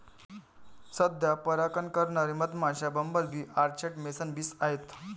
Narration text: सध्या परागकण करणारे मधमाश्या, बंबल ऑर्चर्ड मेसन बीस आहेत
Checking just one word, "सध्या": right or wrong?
right